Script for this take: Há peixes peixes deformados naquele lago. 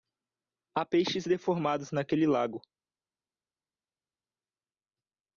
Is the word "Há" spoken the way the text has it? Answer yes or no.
yes